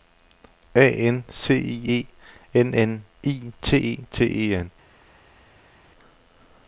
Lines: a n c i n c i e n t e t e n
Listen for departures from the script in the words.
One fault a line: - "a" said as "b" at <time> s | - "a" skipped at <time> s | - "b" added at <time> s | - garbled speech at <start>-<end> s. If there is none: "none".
- "e" added at 1.9 s
- "c" said as "n" at 2.7 s
- "e n" skipped at 3.5 s